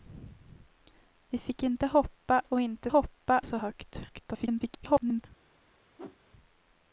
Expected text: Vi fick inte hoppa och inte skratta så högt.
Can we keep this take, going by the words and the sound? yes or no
no